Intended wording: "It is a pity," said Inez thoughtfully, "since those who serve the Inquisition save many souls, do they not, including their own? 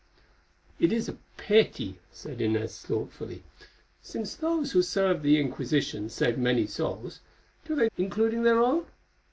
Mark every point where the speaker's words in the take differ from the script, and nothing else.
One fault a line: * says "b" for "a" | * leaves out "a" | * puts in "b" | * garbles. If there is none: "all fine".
* leaves out "not"